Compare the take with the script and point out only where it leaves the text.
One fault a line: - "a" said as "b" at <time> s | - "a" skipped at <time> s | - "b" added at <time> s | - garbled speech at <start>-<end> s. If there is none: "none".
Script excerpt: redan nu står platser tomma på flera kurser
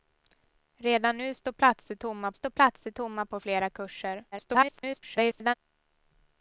- "står platser tomma" added at 2.3 s
- garbled speech at 4.3-5.5 s